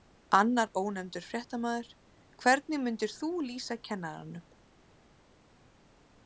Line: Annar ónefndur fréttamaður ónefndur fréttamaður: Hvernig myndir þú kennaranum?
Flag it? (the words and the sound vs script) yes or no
yes